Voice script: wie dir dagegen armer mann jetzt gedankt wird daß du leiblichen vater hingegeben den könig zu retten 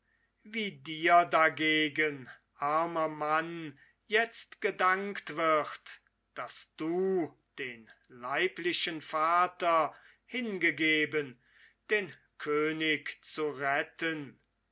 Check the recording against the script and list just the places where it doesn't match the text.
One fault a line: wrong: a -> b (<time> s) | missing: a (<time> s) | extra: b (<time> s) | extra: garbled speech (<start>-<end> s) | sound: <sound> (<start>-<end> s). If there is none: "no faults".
extra: den (7.6 s)